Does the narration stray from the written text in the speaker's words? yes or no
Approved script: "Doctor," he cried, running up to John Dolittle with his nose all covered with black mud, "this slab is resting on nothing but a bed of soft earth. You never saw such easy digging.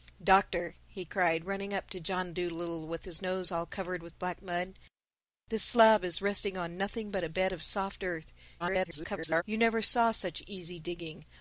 yes